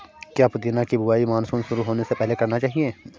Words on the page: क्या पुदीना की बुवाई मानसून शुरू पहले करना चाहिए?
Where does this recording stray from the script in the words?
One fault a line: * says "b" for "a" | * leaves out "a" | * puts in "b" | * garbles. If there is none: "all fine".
* puts in "होने से"